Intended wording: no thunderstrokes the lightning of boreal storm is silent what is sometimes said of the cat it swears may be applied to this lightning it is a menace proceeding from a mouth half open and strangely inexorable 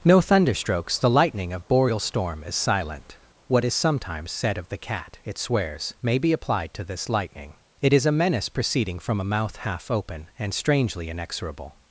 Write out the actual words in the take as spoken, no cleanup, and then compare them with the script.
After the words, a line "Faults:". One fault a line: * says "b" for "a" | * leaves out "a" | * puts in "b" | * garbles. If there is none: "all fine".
no thunderstrokes the lightning of boreal storm is silent what is sometimes said of the cat it swears may be applied to this lightning it is a menace proceeding from a mouth half open and strangely inexorable
Faults:
all fine